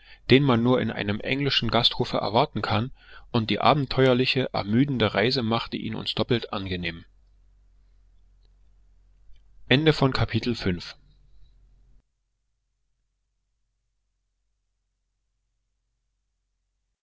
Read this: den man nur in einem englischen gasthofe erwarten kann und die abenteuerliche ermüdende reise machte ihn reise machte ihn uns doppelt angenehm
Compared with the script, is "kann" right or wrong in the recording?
right